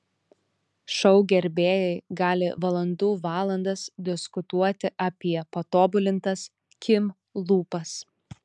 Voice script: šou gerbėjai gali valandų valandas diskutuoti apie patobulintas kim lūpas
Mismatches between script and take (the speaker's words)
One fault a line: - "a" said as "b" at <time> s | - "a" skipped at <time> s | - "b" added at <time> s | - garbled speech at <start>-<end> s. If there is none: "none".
none